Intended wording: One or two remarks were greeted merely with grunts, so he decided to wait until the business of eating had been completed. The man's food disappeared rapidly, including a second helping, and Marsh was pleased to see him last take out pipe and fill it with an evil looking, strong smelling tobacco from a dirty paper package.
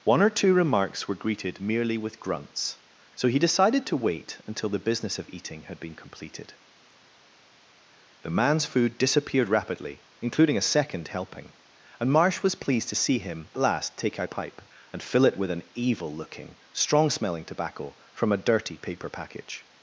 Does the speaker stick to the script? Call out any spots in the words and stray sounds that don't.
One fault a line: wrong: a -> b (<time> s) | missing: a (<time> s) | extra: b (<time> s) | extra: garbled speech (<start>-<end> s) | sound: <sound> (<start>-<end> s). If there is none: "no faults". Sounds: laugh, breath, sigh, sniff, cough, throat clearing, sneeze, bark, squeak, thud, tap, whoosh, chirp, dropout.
no faults